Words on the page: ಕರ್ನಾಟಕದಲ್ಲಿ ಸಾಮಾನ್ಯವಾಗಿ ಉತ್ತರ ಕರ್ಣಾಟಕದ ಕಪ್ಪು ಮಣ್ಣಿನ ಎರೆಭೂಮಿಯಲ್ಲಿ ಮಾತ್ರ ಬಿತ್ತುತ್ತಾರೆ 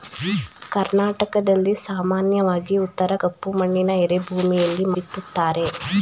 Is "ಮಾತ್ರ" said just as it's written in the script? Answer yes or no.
no